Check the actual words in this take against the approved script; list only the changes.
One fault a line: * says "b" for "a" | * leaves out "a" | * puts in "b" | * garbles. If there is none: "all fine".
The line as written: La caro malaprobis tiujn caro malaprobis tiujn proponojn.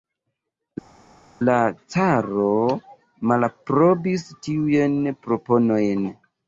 * leaves out "caro malaprobis tiujn"